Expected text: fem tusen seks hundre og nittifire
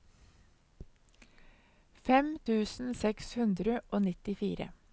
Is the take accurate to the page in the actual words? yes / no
yes